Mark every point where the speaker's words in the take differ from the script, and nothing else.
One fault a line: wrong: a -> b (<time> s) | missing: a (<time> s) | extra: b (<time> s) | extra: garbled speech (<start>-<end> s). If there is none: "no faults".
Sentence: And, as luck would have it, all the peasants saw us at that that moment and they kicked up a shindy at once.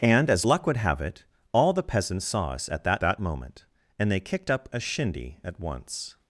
no faults